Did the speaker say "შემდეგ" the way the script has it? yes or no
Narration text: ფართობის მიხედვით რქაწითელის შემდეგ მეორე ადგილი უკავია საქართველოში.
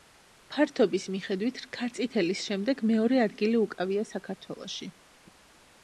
yes